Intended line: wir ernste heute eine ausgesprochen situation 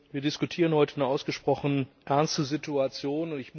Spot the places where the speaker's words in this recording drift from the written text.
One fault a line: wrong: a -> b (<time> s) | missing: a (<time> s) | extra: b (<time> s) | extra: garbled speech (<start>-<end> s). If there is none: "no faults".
wrong: ernste -> diskutieren (0.2 s)
extra: ernste (2.0 s)